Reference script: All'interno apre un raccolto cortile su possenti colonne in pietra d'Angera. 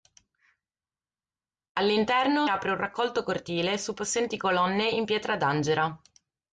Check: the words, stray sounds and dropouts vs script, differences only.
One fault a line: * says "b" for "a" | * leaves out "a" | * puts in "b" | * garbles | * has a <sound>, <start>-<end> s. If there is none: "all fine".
all fine